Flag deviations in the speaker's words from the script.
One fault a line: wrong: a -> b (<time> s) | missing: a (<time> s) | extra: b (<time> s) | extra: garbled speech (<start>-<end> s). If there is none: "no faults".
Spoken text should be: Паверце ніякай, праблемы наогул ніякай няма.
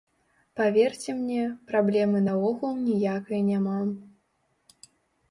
wrong: ніякай -> мне (1.2 s)